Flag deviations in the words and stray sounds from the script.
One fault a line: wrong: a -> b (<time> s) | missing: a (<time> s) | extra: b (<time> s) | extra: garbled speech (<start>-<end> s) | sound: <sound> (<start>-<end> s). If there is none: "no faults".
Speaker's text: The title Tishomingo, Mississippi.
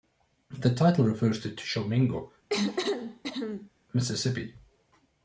extra: refers to (1.1 s)
sound: cough (2.5-3.7 s)